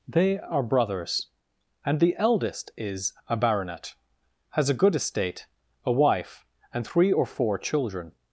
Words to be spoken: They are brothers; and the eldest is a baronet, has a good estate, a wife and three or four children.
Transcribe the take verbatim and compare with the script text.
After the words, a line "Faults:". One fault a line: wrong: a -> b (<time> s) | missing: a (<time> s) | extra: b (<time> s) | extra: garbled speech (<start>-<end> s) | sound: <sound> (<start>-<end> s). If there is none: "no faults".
They are brothers; and the eldest is a baronet, has a good estate, a wife and three or four children.
Faults:
no faults